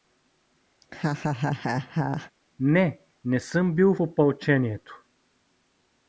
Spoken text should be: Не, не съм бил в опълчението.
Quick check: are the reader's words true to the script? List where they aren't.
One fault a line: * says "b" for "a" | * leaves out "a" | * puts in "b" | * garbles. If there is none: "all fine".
* leaves out "в"